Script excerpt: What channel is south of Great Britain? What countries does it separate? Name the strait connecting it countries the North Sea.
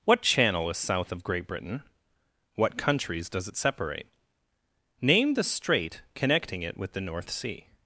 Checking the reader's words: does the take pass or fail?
fail